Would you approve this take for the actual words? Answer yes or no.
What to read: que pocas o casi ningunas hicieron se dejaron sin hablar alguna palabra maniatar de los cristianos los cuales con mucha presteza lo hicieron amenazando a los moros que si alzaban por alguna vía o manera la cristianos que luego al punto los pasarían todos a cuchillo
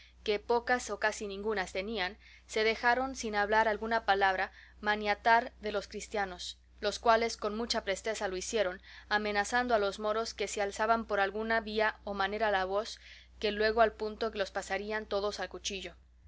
no